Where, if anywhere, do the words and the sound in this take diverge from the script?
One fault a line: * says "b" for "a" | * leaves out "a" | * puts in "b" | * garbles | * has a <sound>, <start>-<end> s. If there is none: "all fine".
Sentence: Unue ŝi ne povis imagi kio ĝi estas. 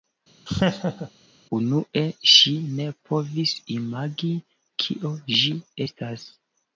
* has a laugh, 0.5-1.1 s